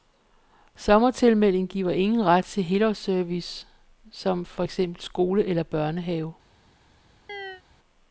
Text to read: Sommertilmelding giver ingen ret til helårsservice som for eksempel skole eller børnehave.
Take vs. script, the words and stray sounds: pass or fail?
fail